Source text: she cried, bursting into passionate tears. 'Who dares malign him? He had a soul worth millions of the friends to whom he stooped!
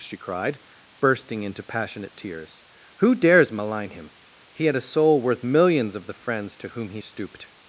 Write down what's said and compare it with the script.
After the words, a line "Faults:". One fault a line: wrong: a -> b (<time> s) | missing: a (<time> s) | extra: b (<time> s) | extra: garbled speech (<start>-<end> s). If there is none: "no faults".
she cried, bursting into passionate tears. 'Who dares malign him? He had a soul worth millions of the friends to whom he stooped!
Faults:
no faults